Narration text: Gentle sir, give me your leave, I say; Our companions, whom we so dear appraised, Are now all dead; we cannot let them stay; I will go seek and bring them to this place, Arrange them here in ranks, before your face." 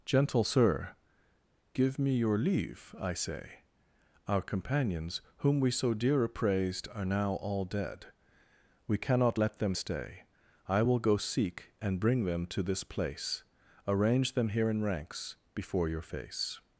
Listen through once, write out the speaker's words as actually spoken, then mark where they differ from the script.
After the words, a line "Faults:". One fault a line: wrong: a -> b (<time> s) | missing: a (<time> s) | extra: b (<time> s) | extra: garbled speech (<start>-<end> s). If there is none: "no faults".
Gentle sir, give me your leave, I say; Our companions, whom we so dear appraised, Are now all dead; we cannot let them stay; I will go seek and bring them to this place, Arrange them here in ranks, before your face."
Faults:
no faults